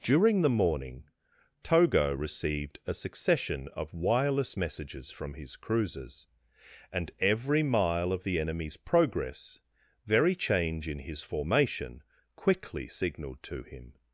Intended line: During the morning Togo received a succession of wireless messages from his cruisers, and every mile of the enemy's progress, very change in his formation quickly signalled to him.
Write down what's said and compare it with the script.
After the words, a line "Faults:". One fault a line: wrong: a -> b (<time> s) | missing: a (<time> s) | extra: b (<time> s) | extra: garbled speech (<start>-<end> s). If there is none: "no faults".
During the morning Togo received a succession of wireless messages from his cruisers, and every mile of the enemy's progress, very change in his formation quickly signalled to him.
Faults:
no faults